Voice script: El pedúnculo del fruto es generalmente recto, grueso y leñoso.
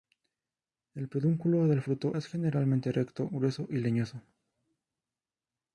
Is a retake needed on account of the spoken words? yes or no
no